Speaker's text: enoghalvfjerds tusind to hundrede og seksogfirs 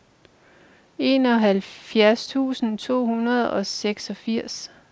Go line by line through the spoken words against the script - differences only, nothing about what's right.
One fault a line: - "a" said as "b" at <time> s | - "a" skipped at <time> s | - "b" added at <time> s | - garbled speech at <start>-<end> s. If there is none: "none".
none